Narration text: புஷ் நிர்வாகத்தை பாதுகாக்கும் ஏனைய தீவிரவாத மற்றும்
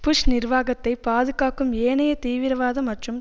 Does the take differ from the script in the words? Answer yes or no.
no